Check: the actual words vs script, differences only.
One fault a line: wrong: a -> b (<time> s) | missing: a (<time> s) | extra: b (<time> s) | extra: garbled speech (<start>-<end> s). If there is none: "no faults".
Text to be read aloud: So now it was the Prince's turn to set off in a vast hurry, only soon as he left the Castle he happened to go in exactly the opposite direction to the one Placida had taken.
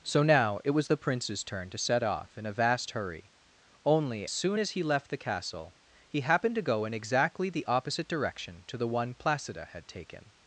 no faults